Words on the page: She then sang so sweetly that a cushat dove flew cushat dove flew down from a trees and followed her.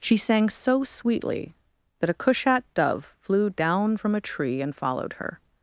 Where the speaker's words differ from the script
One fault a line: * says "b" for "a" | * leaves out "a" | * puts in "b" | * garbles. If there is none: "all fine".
* leaves out "then"
* leaves out "cushat dove flew"
* says "tree" for "trees"